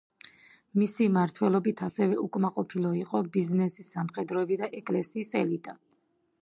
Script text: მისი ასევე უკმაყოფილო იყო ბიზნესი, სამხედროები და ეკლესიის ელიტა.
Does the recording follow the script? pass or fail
fail